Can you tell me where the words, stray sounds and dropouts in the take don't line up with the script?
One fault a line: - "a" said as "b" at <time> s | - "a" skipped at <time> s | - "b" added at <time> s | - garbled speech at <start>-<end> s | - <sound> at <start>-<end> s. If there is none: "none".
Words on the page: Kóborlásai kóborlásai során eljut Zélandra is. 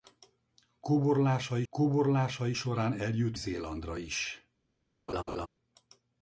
- laugh at 5.1-5.5 s